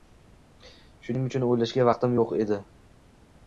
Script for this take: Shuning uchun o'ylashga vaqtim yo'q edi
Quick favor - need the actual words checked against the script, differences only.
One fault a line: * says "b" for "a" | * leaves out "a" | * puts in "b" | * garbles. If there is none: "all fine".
all fine